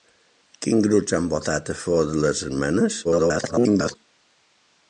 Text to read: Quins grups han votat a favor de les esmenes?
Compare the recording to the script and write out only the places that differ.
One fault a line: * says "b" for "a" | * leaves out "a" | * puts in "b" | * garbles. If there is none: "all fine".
* garbles